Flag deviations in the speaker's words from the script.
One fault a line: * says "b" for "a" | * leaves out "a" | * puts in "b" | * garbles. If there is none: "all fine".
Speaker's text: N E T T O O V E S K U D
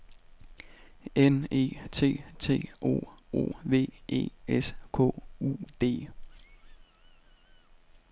all fine